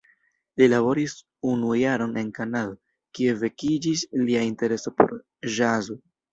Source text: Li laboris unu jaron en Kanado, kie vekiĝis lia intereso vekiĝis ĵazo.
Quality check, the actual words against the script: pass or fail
fail